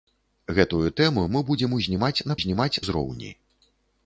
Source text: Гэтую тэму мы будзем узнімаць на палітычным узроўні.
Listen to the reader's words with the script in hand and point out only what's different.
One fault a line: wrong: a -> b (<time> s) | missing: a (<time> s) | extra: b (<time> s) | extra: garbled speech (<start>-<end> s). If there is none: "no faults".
wrong: палітычным -> узнімаць (2.4 s)